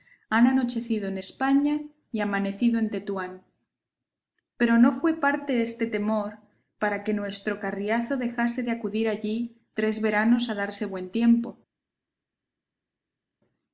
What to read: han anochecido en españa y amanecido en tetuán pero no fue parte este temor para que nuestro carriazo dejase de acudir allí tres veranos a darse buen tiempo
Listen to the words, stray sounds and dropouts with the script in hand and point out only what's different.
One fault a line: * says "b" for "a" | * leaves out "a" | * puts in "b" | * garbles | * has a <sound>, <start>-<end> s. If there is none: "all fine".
all fine